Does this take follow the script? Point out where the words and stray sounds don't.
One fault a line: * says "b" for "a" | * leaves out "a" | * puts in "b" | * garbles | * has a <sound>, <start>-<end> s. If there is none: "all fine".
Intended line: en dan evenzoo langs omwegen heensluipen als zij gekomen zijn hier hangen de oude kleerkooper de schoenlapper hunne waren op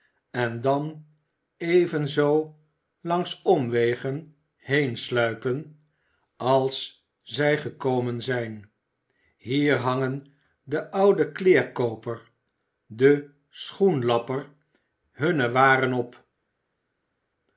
all fine